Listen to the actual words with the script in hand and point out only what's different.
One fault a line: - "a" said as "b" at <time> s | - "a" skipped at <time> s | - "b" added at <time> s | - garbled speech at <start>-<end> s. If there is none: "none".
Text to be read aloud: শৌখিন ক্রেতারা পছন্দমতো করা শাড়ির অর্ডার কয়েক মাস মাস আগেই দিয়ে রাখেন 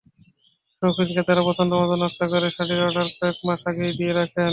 - "নকশা" added at 2.0 s
- "মাস" skipped at 3.6 s